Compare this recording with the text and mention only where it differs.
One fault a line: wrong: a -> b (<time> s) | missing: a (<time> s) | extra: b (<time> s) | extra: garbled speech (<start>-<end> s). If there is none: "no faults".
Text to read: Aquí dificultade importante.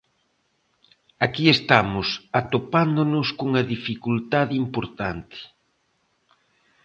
extra: estamos atopándonos cunha (1.6 s)